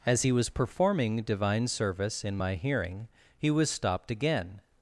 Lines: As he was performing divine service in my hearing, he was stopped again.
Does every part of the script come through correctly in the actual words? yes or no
yes